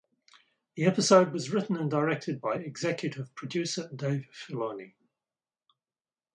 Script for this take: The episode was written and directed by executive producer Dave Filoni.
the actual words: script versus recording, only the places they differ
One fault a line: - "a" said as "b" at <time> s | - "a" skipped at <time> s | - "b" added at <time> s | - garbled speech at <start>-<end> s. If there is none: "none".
none